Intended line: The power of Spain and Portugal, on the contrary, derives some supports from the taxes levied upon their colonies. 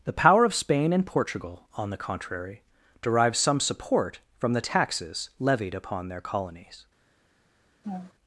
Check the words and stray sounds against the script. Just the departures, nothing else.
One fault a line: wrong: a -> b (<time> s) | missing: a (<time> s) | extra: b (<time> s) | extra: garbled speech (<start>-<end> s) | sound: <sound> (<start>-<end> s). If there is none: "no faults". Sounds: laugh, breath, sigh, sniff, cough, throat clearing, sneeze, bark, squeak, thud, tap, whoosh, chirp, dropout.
wrong: supports -> support (3.6 s)
sound: laugh (7.8-8.1 s)